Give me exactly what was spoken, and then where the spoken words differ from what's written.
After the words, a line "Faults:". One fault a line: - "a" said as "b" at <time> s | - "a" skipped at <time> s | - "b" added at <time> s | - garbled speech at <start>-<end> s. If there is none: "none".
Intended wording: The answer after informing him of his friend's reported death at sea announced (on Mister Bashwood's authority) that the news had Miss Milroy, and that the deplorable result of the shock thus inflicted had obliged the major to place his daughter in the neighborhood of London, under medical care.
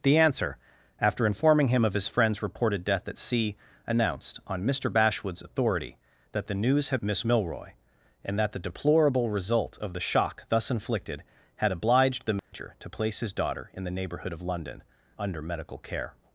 The answer after informing him of his friend's reported death at sea announced (on Mister Bashwood's authority) that the news had Miss Milroy, and that the deplorable result of the shock thus inflicted had obliged the major to place his daughter in the neighborhood of London, under medical care.
Faults:
none